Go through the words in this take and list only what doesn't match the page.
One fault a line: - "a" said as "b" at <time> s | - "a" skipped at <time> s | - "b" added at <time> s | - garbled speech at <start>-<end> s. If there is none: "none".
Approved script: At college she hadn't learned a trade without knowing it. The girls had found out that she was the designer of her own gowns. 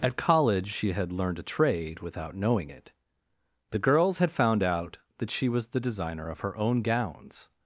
- "hadn't" said as "had" at 0.9 s